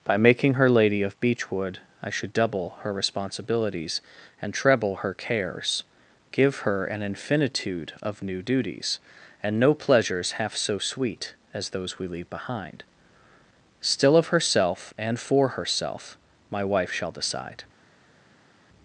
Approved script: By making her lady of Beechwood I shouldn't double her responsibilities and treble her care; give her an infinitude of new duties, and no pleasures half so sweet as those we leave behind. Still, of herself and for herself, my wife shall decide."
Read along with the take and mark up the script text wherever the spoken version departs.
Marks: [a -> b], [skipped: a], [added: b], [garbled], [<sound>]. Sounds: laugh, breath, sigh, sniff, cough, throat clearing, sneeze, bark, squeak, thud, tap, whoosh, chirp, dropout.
By making her lady of Beechwood I [shouldn't -> should] double her responsibilities and treble her [care; -> cares] give her an infinitude of new duties, and no pleasures half so sweet as those we leave behind. Still, of herself and for herself, my wife shall decide."